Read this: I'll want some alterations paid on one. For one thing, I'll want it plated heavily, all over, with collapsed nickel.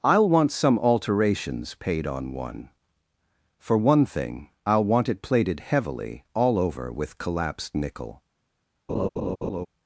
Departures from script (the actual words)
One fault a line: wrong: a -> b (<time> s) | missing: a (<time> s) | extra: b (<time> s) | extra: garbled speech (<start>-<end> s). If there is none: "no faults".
no faults